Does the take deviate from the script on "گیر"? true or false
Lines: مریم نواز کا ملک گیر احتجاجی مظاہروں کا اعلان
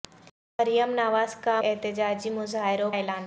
true